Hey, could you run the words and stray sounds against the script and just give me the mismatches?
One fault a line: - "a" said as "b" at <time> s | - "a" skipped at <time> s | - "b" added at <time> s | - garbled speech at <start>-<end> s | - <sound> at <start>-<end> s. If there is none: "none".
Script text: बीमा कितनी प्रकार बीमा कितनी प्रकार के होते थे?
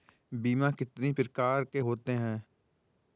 - "बीमा कितनी प्रकार" skipped at 1.6 s
- "थे" said as "हैं" at 2.1 s